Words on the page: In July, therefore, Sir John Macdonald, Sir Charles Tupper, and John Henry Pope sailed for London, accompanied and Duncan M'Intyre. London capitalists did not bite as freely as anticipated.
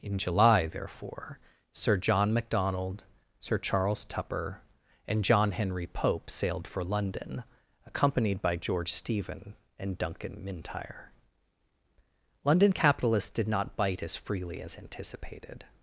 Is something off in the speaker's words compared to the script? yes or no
yes